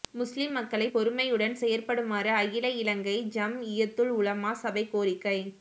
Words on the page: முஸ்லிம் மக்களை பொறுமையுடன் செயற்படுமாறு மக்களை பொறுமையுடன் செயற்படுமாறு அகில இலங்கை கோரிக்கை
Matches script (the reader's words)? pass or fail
fail